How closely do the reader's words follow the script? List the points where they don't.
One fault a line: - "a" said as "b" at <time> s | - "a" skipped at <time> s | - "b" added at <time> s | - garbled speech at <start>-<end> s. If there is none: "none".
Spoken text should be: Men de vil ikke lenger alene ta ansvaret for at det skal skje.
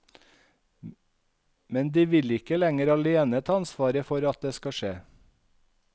none